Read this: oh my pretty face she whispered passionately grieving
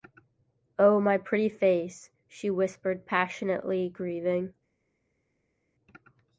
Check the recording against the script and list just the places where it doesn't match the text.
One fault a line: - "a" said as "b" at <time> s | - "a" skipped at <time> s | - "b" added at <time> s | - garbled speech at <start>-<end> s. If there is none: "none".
none